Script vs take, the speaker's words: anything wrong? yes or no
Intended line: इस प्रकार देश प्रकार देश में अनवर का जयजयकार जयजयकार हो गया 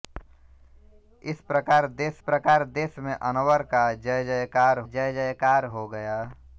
no